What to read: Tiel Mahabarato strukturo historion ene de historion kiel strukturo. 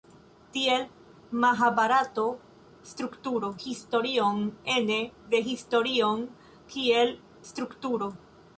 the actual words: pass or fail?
pass